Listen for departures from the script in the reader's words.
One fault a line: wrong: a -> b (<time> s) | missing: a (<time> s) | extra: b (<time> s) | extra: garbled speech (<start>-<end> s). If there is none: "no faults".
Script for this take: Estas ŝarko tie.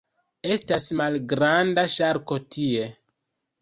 extra: malgranda (1.0 s)